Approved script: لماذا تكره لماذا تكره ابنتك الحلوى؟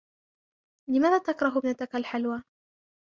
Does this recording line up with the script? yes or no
no